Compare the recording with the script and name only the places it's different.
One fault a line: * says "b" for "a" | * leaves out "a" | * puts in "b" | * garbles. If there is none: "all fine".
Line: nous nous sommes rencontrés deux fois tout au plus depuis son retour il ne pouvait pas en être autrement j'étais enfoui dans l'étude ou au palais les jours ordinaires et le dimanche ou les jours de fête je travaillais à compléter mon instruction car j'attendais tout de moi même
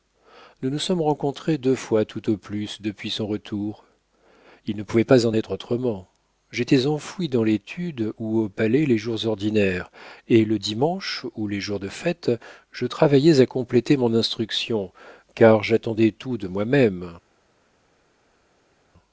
all fine